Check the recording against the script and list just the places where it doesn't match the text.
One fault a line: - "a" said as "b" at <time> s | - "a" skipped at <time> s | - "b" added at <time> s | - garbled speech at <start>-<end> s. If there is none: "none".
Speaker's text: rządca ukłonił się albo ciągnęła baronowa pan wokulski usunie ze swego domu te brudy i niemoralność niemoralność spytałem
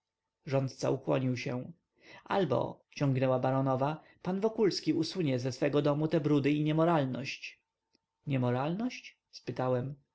none